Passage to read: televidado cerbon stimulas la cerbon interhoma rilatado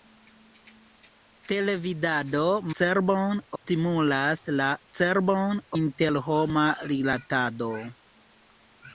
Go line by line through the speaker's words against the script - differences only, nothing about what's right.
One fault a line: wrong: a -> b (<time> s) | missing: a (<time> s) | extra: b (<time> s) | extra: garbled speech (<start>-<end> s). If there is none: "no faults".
no faults